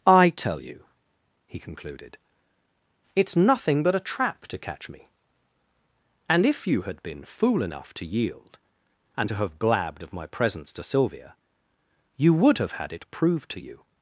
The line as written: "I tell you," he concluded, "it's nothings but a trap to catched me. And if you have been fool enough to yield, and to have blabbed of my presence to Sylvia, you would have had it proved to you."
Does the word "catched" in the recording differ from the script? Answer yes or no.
yes